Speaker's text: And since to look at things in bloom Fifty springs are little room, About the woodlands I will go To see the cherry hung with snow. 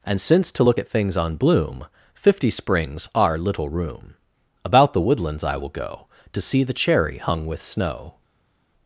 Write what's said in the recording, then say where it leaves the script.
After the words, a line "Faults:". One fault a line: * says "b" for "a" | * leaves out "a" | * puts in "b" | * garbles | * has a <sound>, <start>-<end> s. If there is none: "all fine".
And since to look at things on bloom Fifty springs are little room, About the woodlands I will go To see the cherry hung with snow.
Faults:
* says "on" for "in"